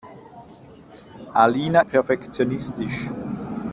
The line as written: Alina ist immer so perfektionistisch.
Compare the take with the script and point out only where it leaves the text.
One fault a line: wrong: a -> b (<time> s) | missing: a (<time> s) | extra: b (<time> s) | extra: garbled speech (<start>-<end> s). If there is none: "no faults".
missing: ist immer so (1.8 s)